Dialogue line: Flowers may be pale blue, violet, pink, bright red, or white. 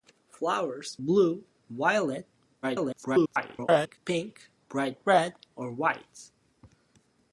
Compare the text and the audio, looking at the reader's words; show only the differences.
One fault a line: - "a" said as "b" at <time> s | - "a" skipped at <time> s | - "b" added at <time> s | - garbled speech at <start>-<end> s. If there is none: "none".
- "may be pale" skipped at 1.0 s
- garbled speech at 2.6-4.0 s